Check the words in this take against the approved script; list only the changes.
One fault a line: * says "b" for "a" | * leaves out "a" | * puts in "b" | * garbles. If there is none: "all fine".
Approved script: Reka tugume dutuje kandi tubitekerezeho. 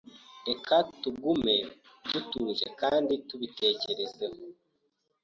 all fine